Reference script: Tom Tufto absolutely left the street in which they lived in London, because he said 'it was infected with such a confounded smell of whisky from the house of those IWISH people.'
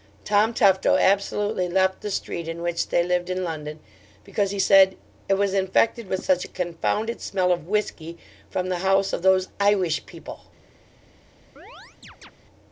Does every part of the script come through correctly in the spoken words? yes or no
yes